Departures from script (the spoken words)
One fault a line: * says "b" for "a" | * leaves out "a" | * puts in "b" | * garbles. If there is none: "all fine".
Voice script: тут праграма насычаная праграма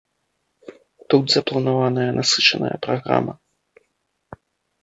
* says "запланаваная" for "праграма"